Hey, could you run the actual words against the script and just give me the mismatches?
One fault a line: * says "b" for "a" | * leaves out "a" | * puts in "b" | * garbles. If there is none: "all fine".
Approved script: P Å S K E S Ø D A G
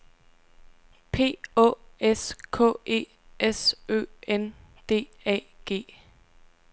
* puts in "N"